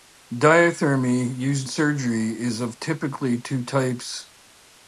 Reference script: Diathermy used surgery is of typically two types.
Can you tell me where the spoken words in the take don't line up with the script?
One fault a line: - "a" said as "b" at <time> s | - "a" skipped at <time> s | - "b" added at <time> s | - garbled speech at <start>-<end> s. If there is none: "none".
none